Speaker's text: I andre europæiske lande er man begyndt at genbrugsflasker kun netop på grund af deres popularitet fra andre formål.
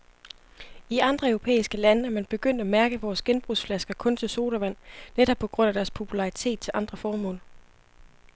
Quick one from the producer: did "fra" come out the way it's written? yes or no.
no